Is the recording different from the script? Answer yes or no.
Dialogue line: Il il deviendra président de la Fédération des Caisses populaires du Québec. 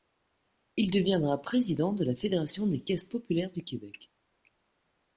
yes